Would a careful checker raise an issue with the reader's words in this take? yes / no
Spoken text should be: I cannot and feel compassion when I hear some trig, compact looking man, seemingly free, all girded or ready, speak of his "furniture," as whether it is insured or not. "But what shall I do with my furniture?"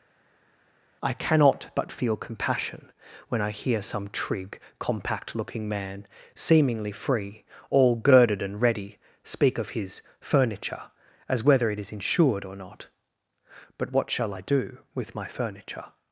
yes